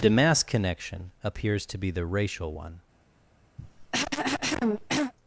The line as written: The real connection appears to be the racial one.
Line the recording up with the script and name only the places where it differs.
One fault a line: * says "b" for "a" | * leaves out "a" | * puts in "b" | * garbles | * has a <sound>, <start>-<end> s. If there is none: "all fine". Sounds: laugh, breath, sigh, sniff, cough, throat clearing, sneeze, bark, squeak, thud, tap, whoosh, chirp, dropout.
* says "mass" for "real"
* has a cough, 3.6-5.1 s